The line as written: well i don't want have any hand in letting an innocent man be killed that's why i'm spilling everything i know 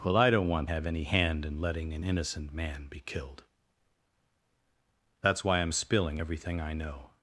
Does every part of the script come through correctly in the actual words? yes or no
yes